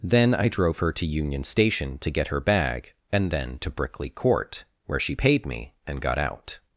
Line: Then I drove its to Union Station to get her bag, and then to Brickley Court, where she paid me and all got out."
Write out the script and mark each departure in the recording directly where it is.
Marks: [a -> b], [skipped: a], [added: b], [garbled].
Then I drove [its -> her] to Union Station to get her bag, and then to Brickley Court, where she paid me and [skipped: all] got out."